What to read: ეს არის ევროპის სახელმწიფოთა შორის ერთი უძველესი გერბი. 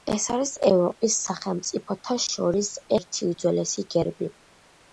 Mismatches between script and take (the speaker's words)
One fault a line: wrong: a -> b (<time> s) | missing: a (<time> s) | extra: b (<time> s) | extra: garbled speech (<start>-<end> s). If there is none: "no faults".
no faults